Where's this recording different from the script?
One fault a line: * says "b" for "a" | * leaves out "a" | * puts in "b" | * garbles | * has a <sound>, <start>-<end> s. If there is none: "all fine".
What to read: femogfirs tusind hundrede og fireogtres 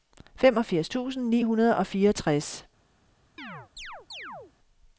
* puts in "ni"
* has a chirp, 3.4-4.5 s